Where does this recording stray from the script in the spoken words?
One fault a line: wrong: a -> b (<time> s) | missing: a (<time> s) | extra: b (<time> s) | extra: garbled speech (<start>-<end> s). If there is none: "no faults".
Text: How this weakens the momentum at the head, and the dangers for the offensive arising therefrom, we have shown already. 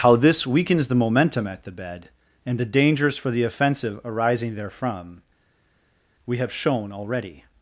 wrong: head -> bed (1.7 s)